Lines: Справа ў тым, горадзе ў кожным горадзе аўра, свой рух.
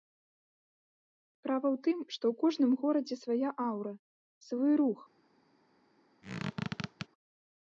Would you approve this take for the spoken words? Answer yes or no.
no